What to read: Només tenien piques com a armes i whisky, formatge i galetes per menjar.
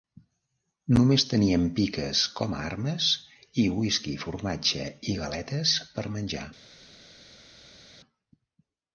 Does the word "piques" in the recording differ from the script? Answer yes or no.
no